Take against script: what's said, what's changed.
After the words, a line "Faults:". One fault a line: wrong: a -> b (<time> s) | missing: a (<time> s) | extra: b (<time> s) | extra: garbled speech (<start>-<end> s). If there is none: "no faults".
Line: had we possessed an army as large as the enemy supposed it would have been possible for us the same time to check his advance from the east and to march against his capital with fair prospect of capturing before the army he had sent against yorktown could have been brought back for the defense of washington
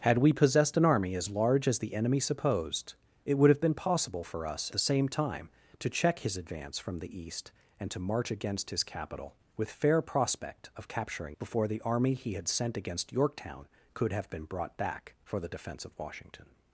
had we possessed an army as large as the enemy supposed it would have been possible for us the same time to check his advance from the east and to march against his capital with fair prospect of capturing before the army he had sent against yorktown could have been brought back for the defense of washington
Faults:
no faults